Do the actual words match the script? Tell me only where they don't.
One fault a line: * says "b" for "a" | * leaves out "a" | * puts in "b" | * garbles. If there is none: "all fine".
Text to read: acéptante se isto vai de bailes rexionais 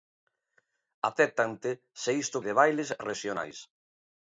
* leaves out "vai"